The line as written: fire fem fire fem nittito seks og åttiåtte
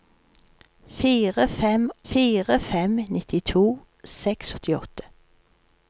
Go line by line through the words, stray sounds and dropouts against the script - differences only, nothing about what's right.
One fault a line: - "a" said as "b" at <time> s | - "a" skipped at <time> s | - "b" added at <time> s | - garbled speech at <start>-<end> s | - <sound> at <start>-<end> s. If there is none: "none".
none